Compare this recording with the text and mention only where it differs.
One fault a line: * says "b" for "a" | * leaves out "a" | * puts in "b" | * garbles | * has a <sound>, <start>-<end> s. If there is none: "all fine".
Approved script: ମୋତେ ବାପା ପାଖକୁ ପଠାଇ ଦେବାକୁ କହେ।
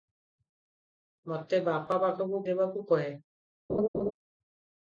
* leaves out "ପଠାଇ"
* has a laugh, 3.7-4.1 s